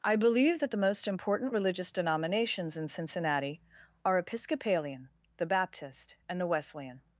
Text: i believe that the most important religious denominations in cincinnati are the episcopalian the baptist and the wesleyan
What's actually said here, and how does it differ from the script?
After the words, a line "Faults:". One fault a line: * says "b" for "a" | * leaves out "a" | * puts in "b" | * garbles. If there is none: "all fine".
i believe that the most important religious denominations in cincinnati are episcopalian the baptist and the wesleyan
Faults:
* leaves out "the"